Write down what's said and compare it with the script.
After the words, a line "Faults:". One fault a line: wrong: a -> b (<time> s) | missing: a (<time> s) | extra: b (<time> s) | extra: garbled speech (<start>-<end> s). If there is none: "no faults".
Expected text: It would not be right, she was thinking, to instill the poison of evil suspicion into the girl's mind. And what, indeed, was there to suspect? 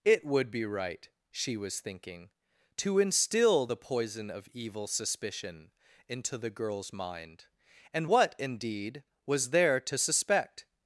It would be right, she was thinking, to instill the poison of evil suspicion into the girl's mind. And what, indeed, was there to suspect?
Faults:
missing: not (0.5 s)